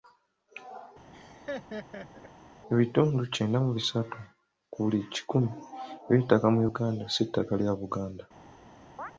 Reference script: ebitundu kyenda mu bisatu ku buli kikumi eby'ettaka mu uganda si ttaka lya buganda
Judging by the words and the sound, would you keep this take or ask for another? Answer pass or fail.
fail